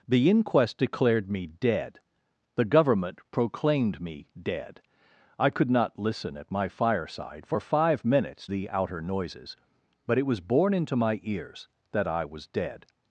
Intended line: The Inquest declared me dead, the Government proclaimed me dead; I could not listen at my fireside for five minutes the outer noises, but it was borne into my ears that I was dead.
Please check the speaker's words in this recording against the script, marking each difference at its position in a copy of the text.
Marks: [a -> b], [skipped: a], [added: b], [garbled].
The Inquest declared me dead, the Government proclaimed me dead; I could not listen at my fireside for five minutes the outer noises, but it was borne into my ears that I was dead.